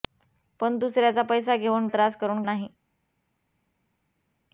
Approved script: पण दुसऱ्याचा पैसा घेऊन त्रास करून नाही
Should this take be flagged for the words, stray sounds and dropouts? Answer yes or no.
no